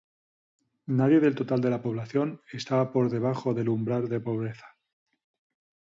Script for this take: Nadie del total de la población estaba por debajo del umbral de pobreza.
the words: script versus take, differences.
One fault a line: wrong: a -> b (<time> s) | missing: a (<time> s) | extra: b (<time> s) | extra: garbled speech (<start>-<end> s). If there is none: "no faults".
no faults